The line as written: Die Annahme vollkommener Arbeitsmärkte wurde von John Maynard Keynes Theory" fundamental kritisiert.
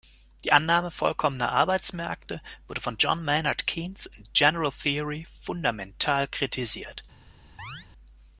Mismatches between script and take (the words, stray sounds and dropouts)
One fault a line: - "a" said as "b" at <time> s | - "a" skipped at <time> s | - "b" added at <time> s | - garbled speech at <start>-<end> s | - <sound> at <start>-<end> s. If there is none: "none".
- "in General" added at 4.0 s
- chirp at 7.6-7.9 s